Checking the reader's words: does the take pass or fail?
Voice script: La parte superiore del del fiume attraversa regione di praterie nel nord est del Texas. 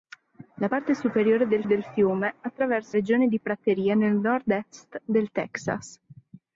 pass